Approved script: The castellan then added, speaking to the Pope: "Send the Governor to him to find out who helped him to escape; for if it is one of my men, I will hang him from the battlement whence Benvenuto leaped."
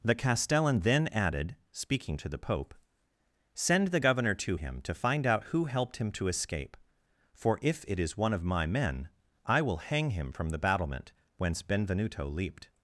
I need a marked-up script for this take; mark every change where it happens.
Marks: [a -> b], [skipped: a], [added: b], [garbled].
The castellan then added, speaking to the Pope: "Send the Governor to him to find out who helped him to escape; for if it is one of my men, I will hang him from the battlement whence Benvenuto leaped."